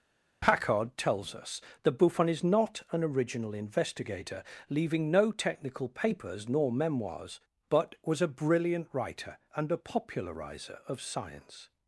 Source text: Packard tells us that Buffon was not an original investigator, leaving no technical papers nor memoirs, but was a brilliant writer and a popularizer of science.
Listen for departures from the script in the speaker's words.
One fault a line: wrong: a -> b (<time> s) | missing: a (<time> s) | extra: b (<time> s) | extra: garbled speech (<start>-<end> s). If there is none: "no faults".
wrong: was -> is (2.3 s)